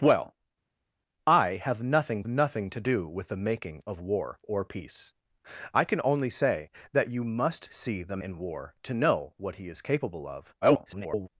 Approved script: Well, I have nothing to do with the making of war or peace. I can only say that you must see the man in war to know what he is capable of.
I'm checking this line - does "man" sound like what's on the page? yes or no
no